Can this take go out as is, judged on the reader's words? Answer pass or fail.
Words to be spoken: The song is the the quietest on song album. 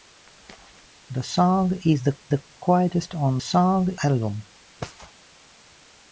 pass